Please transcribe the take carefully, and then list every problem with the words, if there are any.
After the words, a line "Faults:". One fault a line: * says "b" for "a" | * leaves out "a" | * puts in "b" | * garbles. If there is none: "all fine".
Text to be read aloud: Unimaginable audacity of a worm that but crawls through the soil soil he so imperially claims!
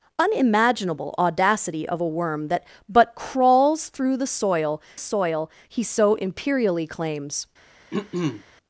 Unimaginable audacity of a worm that but crawls through the soil soil he so imperially claims!
Faults:
all fine